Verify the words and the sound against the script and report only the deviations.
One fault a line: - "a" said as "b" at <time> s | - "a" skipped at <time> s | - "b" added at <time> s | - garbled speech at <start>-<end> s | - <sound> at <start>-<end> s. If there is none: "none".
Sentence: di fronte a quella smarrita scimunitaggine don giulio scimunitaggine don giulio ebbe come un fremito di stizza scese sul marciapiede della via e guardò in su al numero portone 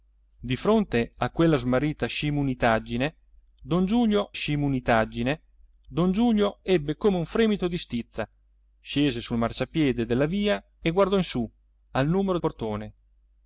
none